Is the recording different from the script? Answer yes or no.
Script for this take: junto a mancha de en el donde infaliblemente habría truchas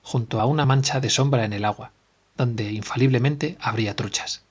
yes